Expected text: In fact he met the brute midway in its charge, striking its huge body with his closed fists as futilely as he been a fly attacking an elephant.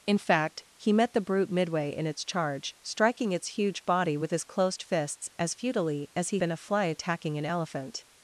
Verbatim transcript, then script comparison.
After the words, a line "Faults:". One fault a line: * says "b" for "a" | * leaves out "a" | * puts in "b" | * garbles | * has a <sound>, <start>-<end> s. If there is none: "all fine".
In fact he met the brute midway in its charge, striking its huge body with his closed fists as futilely as he been a fly attacking an elephant.
Faults:
all fine